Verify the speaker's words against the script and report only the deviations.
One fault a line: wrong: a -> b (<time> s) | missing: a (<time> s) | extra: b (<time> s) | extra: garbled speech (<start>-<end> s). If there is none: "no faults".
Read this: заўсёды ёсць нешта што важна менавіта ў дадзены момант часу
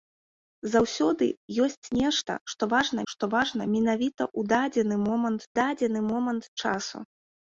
extra: што важна (3.1 s)
extra: дадзены момант (5.6 s)